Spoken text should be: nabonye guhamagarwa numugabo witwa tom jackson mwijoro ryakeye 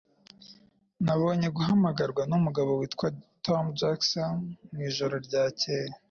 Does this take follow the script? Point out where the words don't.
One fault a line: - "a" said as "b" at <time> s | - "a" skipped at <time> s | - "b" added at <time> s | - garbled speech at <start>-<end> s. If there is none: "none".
none